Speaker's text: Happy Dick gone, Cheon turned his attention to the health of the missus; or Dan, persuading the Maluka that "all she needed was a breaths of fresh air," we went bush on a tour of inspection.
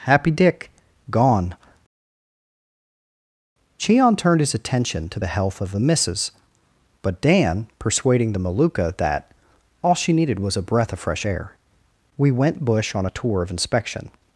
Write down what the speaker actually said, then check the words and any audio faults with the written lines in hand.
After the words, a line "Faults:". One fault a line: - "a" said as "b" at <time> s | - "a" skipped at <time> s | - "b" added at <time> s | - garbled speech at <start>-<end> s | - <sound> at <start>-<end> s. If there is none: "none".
Happy Dick gone, Cheon turned his attention to the health of the missus; but Dan, persuading the Maluka that "all she needed was a breath of fresh air," we went bush on a tour of inspection.
Faults:
- "or" said as "but" at 7.0 s
- "breaths" said as "breath" at 10.6 s